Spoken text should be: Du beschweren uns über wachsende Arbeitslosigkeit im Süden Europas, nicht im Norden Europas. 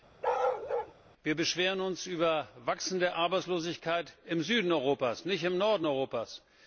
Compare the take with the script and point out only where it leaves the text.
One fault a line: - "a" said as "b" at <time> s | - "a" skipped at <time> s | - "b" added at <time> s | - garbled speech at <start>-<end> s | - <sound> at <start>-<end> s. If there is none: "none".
- bark at 0.2-0.9 s
- "Du" said as "Wir" at 1.2 s